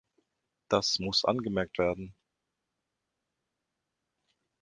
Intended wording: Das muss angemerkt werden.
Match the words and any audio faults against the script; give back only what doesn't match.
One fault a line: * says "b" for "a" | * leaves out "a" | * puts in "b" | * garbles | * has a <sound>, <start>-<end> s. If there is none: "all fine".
all fine